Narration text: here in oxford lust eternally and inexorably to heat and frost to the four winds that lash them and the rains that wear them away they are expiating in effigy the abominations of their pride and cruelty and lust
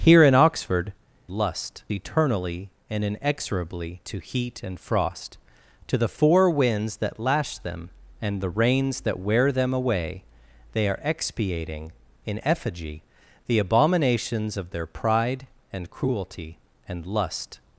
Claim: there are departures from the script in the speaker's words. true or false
false